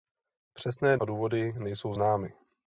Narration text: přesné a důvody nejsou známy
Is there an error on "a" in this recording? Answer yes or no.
no